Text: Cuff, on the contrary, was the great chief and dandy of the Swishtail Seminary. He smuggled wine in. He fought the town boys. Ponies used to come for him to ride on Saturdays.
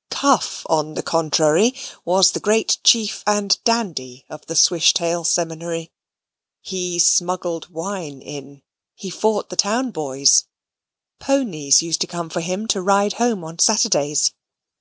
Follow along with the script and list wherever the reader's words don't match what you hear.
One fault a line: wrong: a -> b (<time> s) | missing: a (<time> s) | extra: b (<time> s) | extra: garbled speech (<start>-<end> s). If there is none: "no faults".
extra: home (13.2 s)